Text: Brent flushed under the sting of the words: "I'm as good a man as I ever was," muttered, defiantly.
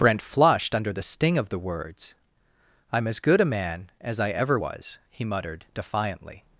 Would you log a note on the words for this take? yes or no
yes